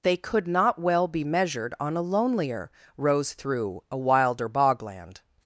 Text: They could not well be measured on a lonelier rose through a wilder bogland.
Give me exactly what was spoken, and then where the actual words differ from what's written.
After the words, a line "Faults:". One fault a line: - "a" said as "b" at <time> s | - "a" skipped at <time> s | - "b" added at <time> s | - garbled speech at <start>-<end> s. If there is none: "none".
They could not well be measured on a lonelier rose through a wilder bogland.
Faults:
none